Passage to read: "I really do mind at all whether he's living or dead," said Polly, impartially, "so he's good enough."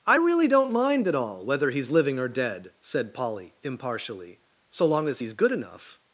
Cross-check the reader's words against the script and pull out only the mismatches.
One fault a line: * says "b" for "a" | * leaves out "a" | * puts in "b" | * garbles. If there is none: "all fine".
* says "don't" for "do"
* puts in "long as"